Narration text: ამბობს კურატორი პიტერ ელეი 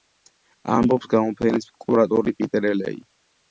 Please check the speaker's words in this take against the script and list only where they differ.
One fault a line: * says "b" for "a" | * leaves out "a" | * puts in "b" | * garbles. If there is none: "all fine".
* puts in "გამოფენის"